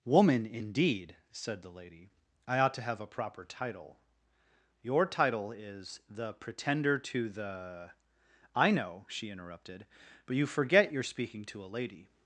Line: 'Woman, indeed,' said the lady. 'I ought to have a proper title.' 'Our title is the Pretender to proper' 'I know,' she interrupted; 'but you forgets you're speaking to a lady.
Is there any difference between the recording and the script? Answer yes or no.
yes